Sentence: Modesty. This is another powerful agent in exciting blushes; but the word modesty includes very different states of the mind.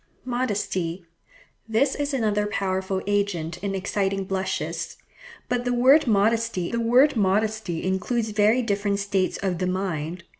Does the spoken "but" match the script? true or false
true